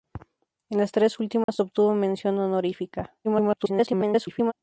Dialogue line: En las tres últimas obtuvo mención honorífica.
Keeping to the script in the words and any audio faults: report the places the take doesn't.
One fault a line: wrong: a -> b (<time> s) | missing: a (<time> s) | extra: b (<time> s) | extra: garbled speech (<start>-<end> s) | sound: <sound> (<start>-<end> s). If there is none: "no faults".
sound: dropout (1.4-1.5 s)
extra: garbled speech (3.2-4.5 s)